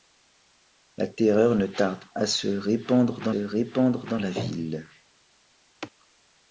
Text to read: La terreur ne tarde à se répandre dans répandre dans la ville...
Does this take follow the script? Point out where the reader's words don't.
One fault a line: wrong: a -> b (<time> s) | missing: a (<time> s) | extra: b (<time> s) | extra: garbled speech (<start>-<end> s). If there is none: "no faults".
no faults